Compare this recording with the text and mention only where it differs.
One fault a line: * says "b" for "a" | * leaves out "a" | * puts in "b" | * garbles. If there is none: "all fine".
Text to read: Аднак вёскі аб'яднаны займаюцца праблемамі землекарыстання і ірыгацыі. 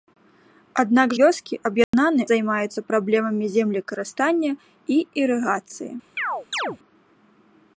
all fine